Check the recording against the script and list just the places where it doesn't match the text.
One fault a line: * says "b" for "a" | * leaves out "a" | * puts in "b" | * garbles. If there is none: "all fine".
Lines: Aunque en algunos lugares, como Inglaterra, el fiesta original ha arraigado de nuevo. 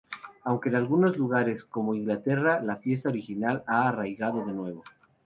* says "la" for "el"